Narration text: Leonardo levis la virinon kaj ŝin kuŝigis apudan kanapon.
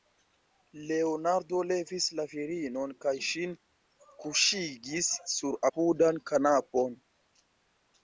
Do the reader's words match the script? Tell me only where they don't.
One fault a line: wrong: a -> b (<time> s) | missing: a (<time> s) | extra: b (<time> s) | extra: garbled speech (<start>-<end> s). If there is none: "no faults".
extra: sur (5.4 s)